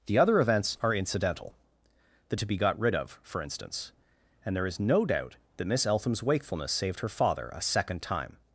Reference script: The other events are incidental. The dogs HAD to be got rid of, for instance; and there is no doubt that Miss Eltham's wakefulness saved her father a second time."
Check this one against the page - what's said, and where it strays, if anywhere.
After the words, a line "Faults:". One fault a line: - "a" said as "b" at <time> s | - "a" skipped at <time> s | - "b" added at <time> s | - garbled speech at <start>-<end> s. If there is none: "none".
The other events are incidental. The to be got rid of, for instance; and there is no doubt that Miss Eltham's wakefulness saved her father a second time."
Faults:
- "dogs HAD" skipped at 2.4 s